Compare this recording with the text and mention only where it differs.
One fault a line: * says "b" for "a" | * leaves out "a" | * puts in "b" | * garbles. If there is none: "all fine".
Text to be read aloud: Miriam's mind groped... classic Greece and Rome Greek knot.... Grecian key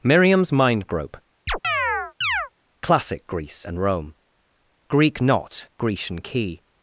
* says "grope" for "groped"